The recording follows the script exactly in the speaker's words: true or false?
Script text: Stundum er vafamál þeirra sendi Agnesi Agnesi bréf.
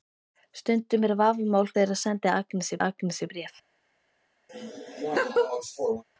true